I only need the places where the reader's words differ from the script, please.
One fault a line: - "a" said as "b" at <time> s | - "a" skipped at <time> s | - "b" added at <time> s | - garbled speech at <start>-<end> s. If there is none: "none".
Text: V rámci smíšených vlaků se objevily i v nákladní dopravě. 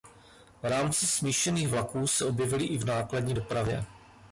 none